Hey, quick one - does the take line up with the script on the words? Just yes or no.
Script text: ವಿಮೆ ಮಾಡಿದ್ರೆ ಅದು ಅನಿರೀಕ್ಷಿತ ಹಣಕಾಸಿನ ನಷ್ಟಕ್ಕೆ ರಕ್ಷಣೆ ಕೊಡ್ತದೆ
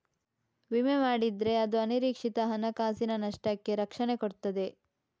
yes